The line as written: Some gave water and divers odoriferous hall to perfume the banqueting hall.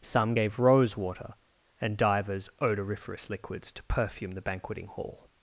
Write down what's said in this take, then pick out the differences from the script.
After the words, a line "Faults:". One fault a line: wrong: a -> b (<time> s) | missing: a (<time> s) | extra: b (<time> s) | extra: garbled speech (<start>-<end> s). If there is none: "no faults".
Some gave rose water and divers odoriferous liquids to perfume the banqueting hall.
Faults:
extra: rose (0.6 s)
wrong: hall -> liquids (3.3 s)